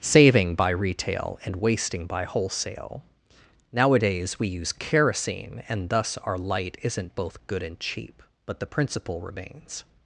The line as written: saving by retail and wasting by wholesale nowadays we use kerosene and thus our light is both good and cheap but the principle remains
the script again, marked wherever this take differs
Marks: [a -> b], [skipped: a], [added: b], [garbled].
saving by retail and wasting by wholesale nowadays we use kerosene and thus our light [is -> isn't] both good and cheap but the principle remains